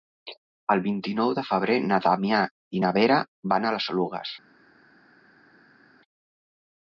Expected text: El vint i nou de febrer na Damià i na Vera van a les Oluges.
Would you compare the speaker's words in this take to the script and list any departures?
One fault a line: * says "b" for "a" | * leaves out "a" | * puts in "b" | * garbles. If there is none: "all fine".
all fine